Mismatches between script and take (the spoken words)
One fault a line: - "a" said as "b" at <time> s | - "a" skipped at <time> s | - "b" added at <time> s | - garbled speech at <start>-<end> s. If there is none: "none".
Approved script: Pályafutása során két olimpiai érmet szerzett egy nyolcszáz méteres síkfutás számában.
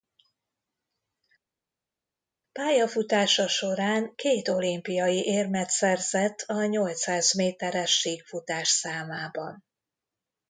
- "egy" said as "a" at 6.4 s